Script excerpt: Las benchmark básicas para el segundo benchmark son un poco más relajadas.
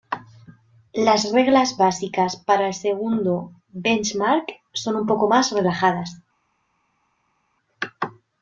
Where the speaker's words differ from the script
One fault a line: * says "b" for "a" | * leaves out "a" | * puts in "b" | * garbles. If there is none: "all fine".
* says "reglas" for "benchmark"